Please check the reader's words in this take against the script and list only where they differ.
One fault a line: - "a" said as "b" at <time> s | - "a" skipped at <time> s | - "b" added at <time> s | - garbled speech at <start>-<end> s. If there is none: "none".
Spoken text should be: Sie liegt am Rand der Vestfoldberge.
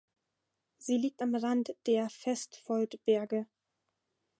none